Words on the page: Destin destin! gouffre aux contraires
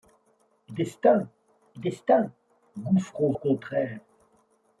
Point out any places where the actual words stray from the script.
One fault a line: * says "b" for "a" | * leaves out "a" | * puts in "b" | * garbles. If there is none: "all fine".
all fine